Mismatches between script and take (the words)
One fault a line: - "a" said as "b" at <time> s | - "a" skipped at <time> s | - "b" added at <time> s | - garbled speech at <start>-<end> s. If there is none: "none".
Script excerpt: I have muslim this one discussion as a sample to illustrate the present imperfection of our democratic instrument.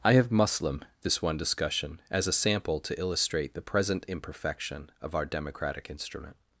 none